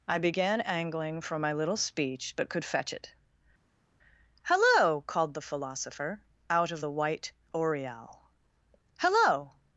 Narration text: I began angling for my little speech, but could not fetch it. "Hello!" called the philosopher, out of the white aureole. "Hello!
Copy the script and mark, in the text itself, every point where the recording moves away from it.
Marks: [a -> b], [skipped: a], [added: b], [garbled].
I began angling for my little speech, but could [skipped: not] fetch it. "Hello!" called the philosopher, out of the white aureole. "Hello!